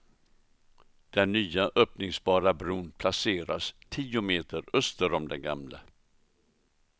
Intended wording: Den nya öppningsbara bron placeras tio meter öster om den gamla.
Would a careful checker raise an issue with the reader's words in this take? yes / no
no